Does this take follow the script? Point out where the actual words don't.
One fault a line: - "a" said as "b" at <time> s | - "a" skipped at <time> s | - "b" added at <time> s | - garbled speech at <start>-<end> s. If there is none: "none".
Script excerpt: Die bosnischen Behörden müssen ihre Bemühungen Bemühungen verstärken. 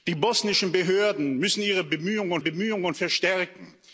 none